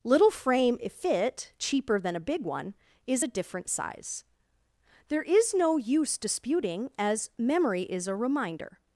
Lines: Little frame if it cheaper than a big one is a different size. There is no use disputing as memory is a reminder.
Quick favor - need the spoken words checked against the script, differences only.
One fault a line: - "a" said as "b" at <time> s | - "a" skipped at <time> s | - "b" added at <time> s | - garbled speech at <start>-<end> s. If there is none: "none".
none